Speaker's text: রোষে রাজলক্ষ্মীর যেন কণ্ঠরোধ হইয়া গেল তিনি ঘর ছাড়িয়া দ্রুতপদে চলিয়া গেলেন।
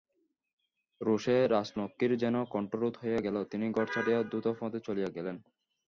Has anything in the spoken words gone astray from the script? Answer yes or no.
no